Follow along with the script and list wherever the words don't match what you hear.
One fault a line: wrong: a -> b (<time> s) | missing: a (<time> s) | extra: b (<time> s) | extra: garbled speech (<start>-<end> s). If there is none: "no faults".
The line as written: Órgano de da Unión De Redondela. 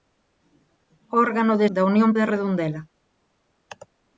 no faults